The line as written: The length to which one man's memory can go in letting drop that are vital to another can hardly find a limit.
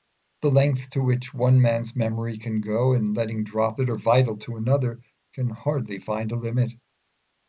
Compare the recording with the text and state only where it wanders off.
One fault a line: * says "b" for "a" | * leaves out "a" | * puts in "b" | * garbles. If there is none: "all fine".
all fine